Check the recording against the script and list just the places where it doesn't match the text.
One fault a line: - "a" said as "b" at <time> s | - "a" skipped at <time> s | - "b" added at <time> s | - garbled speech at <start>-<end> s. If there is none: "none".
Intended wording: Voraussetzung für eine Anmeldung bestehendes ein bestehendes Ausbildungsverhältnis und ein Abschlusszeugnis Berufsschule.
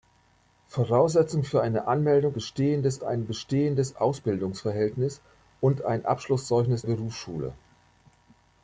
none